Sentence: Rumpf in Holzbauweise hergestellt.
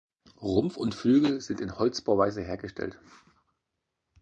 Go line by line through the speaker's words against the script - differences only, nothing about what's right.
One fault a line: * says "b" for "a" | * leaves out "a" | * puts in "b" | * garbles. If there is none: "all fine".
* puts in "und Flügel sind"